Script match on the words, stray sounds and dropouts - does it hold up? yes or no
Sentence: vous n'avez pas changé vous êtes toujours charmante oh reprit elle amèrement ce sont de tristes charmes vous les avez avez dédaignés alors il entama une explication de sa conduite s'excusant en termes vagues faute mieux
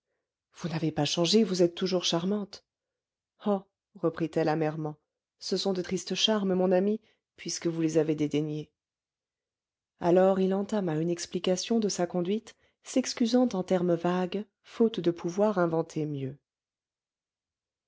no